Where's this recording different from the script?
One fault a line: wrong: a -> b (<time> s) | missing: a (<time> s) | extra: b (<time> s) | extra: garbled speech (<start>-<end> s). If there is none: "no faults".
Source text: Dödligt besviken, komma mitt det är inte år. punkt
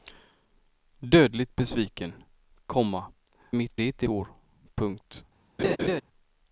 no faults